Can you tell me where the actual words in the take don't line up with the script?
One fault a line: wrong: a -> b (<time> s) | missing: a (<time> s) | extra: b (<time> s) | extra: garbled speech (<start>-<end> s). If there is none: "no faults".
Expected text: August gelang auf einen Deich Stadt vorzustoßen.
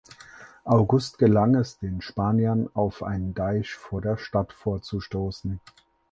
extra: es den Spaniern (1.5 s)
extra: vor der (3.8 s)